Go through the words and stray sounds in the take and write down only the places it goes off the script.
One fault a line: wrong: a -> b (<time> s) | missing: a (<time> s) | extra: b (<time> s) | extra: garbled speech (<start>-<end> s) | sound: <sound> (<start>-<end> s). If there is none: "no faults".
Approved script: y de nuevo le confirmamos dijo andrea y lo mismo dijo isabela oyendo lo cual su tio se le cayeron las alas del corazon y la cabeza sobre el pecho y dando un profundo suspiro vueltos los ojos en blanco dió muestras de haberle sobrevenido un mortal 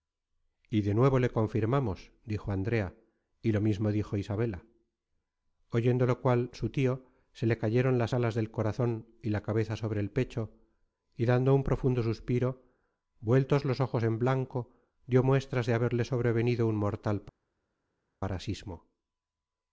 no faults